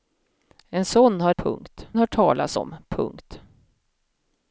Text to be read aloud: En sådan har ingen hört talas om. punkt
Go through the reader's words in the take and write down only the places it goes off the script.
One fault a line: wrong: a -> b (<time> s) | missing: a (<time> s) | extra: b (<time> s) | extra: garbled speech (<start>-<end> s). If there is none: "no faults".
wrong: ingen -> punkt (1.4 s)